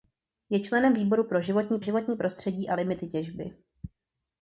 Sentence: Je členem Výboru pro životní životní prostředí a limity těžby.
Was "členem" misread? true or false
false